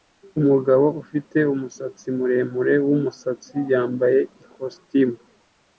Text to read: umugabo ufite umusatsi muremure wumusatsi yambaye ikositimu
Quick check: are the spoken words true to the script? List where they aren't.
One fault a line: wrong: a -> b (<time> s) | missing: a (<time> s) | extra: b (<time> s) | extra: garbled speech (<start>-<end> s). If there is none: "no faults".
no faults